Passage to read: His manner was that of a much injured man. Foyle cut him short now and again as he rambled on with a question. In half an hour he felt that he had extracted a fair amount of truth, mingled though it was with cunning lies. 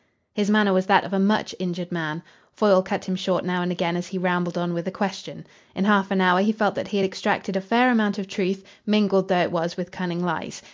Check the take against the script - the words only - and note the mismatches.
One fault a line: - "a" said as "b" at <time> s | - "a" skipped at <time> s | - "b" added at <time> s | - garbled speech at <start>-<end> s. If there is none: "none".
none